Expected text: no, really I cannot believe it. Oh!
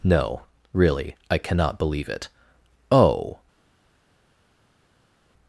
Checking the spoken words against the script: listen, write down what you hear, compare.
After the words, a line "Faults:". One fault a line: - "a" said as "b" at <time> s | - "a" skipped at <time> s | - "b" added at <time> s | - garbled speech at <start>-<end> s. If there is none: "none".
no, really I cannot believe it. Oh!
Faults:
none